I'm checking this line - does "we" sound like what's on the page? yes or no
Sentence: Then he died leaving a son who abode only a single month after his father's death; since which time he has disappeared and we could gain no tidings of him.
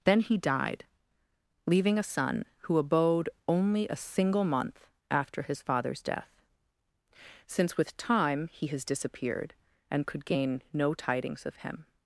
no